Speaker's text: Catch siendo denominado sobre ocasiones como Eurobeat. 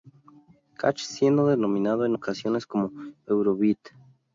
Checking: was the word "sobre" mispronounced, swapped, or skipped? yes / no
yes